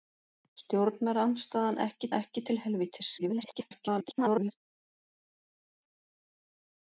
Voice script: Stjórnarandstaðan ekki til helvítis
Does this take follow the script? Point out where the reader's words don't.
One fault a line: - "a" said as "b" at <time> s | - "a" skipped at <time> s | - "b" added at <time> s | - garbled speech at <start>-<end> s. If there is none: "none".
- "ekki" added at 2.2 s
- garbled speech at 3.2-4.5 s